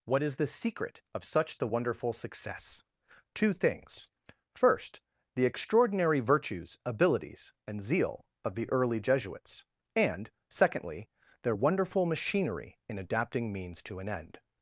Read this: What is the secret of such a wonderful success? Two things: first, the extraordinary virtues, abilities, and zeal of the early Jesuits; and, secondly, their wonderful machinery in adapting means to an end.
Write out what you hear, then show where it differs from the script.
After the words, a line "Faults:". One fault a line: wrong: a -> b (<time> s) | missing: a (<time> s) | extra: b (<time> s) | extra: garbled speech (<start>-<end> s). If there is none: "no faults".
What is the secret of such the wonderful success? Two things: first, the extraordinary virtues, abilities, and zeal of the early Jesuits; and, secondly, their wonderful machinery in adapting means to an end.
Faults:
wrong: a -> the (1.6 s)